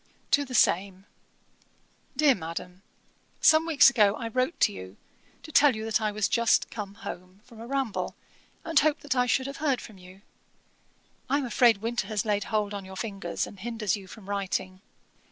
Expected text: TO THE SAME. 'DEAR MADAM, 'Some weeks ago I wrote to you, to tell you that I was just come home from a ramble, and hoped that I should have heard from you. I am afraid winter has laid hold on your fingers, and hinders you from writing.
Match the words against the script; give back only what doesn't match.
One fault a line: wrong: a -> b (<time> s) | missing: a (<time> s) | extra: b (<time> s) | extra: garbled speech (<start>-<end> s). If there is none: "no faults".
no faults